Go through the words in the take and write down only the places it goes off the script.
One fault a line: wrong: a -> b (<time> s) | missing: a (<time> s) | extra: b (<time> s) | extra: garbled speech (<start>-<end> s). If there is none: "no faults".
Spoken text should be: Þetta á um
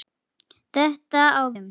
no faults